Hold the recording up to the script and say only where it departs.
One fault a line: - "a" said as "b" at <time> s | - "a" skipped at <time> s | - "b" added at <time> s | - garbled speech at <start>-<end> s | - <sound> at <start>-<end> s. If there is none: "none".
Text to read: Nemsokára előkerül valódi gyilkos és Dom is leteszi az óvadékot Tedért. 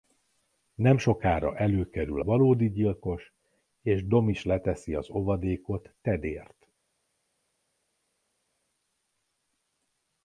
none